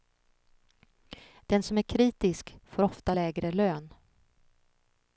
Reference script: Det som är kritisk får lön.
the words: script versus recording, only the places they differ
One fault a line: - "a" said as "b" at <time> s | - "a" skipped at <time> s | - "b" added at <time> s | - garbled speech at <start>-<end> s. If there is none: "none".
- "Det" said as "Den" at 1.4 s
- "ofta lägre" added at 2.8 s